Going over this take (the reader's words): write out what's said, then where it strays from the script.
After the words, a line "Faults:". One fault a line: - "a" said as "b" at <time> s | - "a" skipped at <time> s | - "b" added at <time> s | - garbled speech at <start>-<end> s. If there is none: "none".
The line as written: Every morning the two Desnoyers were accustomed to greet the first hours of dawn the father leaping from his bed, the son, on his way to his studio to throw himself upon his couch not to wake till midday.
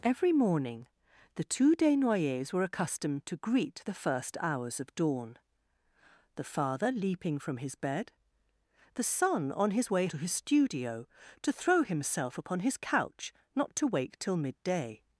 Every morning the two Desnoyers were accustomed to greet the first hours of dawn the father leaping from his bed, the son, on his way to his studio to throw himself upon his couch not to wake till midday.
Faults:
none